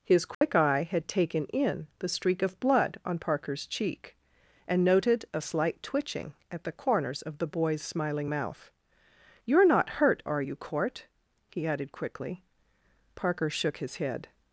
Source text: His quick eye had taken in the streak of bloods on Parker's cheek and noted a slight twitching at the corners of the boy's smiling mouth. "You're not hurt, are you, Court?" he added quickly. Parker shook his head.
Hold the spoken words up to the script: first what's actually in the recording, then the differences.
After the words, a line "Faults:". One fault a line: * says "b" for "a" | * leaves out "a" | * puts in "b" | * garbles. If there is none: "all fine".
His quick eye had taken in the streak of blood on Parker's cheek and noted a slight twitching at the corners of the boy's smiling mouth. "You're not hurt, are you, Court?" he added quickly. Parker shook his head.
Faults:
* says "blood" for "bloods"